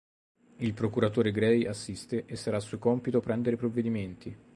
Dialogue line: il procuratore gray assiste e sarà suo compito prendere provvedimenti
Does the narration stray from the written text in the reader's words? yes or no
no